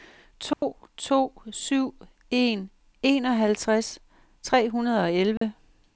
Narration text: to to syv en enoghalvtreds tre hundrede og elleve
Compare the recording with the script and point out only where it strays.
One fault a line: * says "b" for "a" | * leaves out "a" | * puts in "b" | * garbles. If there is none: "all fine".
all fine